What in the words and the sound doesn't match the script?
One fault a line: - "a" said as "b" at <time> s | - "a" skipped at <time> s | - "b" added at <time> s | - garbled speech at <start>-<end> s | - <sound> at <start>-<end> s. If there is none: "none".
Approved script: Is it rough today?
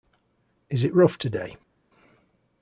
none